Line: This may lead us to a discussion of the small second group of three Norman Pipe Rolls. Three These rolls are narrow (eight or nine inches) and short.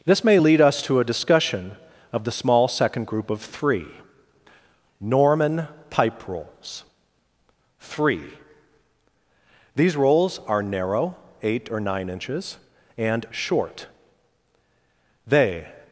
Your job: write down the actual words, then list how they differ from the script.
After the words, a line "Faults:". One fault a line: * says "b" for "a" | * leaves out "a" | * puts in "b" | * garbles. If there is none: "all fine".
This may lead us to a discussion of the small second group of three Norman Pipe Rolls. Three These rolls are narrow (eight or nine inches) and short. They
Faults:
* puts in "They"